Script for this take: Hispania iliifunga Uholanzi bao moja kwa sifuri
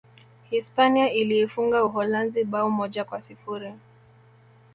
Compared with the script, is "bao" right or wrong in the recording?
right